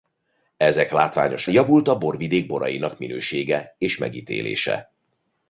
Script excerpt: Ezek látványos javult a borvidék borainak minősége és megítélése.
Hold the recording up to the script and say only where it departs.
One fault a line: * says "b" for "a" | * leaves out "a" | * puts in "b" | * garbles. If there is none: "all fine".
all fine